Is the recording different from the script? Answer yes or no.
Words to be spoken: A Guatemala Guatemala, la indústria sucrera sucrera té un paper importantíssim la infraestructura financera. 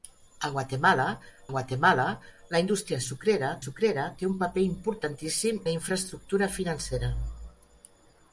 no